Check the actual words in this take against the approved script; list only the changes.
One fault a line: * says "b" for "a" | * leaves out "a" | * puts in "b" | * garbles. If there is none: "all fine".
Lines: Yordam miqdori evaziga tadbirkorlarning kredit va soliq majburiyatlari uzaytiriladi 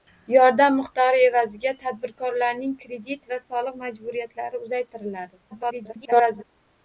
* garbles